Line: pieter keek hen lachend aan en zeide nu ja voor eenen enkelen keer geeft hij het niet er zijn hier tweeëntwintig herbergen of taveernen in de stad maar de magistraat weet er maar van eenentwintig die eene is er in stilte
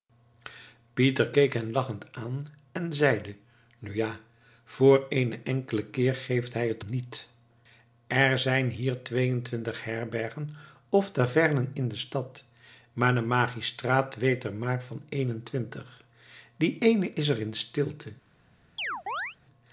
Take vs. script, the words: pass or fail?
pass